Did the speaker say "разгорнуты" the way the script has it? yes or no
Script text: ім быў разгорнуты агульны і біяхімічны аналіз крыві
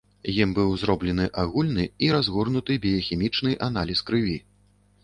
no